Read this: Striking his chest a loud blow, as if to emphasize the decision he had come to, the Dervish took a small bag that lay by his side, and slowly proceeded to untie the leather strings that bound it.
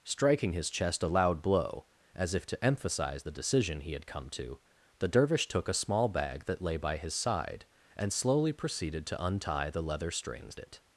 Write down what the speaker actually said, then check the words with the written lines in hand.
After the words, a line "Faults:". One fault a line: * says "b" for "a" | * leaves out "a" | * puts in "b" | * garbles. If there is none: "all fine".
Striking his chest a loud blow, as if to emphasize the decision he had come to, the Dervish took a small bag that lay by his side, and slowly proceeded to untie the leather strings it.
Faults:
* leaves out "that bound"